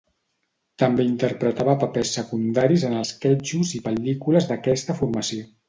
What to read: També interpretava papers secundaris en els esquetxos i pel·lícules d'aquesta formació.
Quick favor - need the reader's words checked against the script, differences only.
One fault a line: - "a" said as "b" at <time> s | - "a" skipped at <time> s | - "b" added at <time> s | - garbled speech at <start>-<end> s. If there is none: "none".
- "els" skipped at 3.0 s